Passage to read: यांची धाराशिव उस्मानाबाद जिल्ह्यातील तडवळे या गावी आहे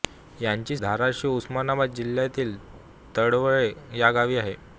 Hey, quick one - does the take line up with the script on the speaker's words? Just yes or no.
yes